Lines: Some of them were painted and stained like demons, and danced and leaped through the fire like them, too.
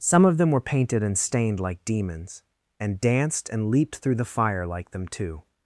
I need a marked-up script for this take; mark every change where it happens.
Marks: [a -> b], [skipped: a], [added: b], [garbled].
Some of them were painted and stained like demons, and danced and leaped through the fire like them, too.